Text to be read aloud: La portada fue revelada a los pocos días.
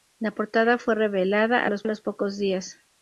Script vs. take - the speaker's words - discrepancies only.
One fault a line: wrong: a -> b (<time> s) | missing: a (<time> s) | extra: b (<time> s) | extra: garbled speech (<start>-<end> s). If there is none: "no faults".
extra: los (1.8 s)